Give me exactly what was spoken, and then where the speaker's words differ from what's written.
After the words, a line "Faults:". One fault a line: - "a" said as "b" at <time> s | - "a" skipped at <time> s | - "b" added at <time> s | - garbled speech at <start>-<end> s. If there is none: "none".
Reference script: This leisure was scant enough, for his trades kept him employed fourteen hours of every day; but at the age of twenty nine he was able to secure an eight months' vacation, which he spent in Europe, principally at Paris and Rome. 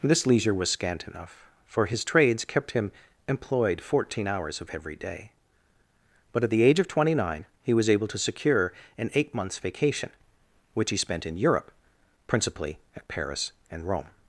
This leisure was scant enough, for his trades kept him employed fourteen hours of every day; but at the age of twenty nine he was able to secure an eight months' vacation, which he spent in Europe, principally at Paris and Rome.
Faults:
none